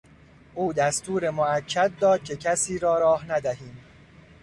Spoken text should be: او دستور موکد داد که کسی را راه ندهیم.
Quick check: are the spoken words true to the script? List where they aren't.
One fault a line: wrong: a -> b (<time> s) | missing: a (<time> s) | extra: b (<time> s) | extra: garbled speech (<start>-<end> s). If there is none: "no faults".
no faults